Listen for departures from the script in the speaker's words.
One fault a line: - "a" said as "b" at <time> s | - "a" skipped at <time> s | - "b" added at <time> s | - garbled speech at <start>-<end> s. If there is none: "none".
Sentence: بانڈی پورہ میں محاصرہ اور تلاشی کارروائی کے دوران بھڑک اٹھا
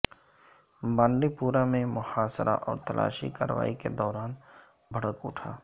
none